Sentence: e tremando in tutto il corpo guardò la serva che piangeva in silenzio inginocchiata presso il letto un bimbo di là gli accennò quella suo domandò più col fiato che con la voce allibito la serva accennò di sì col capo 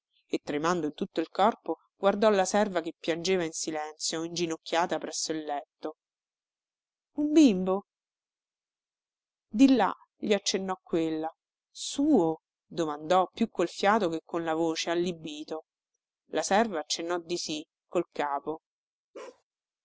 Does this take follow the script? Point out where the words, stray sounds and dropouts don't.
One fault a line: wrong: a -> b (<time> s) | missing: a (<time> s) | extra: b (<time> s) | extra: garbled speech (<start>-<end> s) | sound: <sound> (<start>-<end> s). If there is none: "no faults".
sound: bark (19.1-19.4 s)